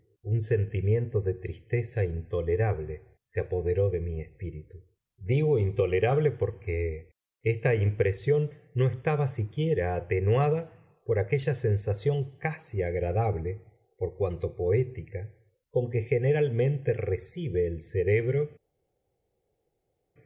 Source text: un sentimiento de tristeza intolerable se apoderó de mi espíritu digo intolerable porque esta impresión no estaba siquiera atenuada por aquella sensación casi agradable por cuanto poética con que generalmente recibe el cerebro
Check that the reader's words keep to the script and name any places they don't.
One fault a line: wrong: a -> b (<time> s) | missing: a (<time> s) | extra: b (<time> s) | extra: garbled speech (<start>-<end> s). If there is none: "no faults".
no faults